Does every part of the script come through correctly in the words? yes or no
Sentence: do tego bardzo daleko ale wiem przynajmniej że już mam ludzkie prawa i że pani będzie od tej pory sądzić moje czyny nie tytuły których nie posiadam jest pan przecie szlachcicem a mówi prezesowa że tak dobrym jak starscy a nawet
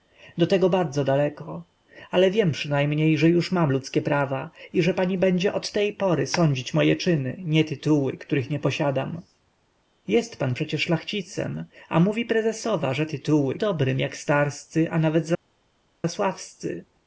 no